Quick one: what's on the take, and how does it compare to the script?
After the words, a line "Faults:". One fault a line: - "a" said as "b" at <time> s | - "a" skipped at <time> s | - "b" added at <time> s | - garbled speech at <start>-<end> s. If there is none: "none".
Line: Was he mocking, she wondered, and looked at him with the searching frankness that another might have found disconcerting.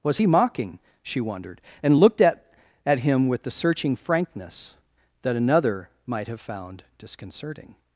Was he mocking, she wondered, and looked at at him with the searching frankness that another might have found disconcerting.
Faults:
- "at" added at 2.9 s